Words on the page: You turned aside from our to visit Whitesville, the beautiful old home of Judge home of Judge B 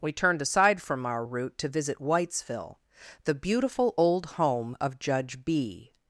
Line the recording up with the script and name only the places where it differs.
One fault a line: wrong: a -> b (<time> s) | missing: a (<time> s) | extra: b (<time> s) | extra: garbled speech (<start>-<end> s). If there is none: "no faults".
wrong: You -> We (0.0 s)
extra: route (1.2 s)
missing: home of Judge (5.5 s)